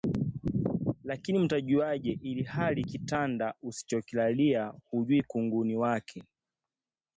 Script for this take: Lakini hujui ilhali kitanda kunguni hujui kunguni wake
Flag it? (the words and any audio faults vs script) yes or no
yes